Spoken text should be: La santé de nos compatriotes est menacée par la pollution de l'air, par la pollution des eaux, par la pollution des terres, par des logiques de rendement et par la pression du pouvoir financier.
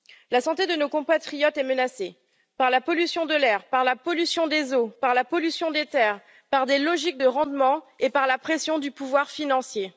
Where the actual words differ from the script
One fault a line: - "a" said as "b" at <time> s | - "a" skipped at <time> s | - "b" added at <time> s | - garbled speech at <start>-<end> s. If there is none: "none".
none